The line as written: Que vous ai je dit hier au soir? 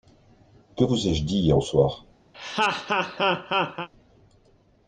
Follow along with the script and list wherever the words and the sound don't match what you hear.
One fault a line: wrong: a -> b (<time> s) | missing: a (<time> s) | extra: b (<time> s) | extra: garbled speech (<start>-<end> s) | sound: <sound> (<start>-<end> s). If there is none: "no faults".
sound: laugh (2.3-3.9 s)